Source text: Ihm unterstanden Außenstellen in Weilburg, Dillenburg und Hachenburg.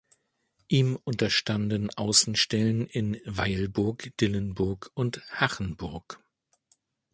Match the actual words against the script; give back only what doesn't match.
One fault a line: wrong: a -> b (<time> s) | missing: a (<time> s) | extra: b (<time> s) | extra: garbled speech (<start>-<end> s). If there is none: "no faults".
no faults